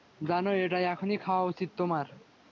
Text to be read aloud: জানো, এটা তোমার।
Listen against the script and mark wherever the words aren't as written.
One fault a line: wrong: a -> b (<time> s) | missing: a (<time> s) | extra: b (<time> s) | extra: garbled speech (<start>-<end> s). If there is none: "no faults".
extra: এখনই খাওয়া উচিত (0.9 s)